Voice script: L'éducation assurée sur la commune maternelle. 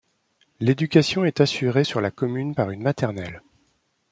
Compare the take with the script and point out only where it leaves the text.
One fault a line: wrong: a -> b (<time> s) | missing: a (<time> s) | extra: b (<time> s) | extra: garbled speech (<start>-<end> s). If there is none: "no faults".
extra: est (1.2 s)
extra: par une (2.5 s)